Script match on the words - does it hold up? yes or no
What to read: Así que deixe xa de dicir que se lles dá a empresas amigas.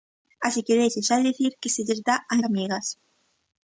no